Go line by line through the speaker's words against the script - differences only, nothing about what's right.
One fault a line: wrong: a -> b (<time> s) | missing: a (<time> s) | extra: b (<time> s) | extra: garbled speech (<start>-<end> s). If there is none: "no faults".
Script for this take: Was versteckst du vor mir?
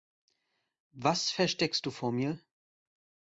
no faults